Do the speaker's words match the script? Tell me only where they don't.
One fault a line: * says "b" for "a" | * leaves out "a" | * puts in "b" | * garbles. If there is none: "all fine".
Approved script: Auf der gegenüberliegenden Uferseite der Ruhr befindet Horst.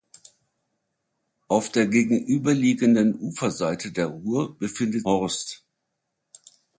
all fine